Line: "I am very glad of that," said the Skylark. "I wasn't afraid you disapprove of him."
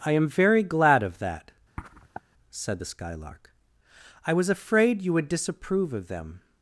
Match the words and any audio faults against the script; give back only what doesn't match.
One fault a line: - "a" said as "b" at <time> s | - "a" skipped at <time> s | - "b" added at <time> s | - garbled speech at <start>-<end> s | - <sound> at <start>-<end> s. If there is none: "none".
- sniff at 1.8-2.2 s
- "wasn't" said as "was" at 4.3 s
- "would" added at 5.1 s
- "him" said as "them" at 6.1 s